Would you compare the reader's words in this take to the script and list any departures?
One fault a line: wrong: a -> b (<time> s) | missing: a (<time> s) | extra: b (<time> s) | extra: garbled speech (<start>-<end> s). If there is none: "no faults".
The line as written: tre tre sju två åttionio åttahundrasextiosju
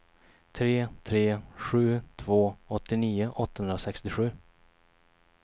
no faults